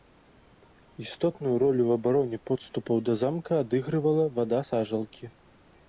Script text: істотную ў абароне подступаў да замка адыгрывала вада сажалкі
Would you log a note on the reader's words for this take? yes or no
yes